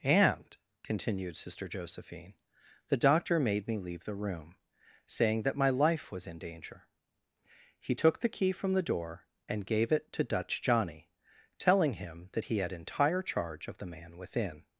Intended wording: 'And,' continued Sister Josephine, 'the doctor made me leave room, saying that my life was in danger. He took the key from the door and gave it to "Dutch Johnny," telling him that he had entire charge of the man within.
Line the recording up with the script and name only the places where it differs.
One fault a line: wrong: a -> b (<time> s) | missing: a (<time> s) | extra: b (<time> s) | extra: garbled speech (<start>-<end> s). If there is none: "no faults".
extra: the (4.0 s)